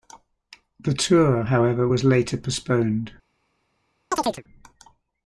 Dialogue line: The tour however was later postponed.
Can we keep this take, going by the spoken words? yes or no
yes